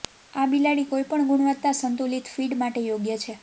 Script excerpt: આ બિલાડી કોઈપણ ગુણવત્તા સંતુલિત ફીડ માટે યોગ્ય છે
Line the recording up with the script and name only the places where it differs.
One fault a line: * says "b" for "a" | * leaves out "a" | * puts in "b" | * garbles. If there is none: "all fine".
all fine